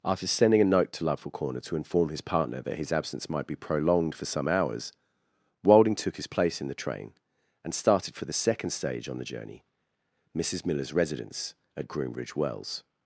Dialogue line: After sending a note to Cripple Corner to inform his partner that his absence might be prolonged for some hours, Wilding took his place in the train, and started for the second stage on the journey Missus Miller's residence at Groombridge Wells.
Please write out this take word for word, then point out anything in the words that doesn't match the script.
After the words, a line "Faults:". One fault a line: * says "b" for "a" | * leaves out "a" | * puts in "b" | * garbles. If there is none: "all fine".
After sending a note to Loveful Corner to inform his partner that his absence might be prolonged for some hours, Wilding took his place in the train, and started for the second stage on the journey Missus Miller's residence at Groombridge Wells.
Faults:
* says "Loveful" for "Cripple"